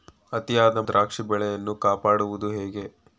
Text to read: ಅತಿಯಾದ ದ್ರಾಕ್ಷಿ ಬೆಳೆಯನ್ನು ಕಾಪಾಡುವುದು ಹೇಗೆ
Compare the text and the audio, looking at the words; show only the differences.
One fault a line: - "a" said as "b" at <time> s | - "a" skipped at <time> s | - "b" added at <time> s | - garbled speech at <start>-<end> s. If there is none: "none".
none